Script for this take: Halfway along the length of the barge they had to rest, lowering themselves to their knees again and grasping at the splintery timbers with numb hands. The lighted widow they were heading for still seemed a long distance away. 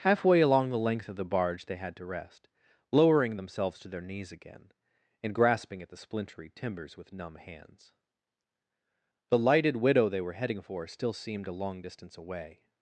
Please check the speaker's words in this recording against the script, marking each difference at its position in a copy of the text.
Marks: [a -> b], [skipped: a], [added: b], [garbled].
Halfway along the length of the barge they had to rest, lowering themselves to their knees again and grasping at the splintery timbers with numb hands. The lighted widow they were heading for still seemed a long distance away.